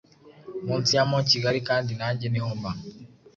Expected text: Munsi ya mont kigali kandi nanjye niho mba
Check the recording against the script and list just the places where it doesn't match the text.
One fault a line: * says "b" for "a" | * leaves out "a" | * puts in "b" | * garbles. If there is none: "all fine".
all fine